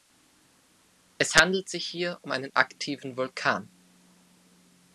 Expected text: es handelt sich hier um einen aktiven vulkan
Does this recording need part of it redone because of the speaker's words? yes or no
no